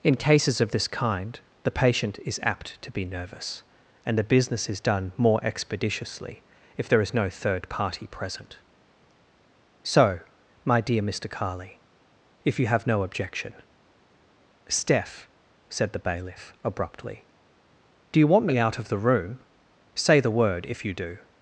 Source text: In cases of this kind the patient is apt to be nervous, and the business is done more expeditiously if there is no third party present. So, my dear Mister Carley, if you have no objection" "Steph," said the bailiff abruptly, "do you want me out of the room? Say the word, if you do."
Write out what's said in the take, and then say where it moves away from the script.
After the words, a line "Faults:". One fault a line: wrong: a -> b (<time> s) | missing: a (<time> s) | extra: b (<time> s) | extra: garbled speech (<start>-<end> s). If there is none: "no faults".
In cases of this kind the patient is apt to be nervous, and the business is done more expeditiously if there is no third party present. So, my dear Mister Carley, if you have no objection" "Steph," said the bailiff abruptly, "do you want me out of the room? Say the word, if you do."
Faults:
no faults